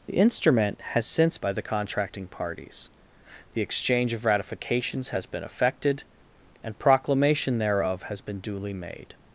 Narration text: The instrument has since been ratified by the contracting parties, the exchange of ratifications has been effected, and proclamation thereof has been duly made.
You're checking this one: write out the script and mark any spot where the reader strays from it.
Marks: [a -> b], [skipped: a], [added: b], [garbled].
The instrument has since [skipped: been ratified] by the contracting parties, the exchange of ratifications has been effected, and proclamation thereof has been duly made.